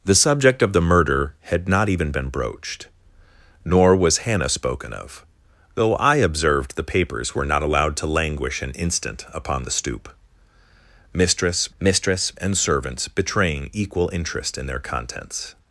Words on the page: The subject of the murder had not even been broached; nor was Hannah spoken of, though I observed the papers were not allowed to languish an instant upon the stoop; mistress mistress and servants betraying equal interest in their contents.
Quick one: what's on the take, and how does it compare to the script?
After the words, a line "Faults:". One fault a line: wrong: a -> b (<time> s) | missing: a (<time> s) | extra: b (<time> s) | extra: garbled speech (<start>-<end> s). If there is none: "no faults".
The subject of the murder had not even been broached; nor was Hannah spoken of, though I observed the papers were not allowed to languish an instant upon the stoop; mistress mistress and servants betraying equal interest in their contents.
Faults:
no faults